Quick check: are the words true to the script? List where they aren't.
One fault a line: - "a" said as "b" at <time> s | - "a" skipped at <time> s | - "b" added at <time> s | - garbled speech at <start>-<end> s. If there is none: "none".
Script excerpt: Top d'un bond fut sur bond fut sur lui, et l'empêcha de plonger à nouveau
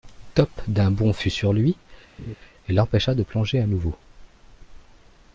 - "bond fut sur" skipped at 1.5 s